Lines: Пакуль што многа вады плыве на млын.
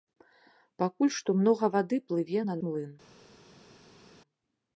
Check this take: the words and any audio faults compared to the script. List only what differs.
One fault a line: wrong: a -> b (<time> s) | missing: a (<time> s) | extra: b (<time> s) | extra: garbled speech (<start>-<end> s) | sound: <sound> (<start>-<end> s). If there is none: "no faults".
no faults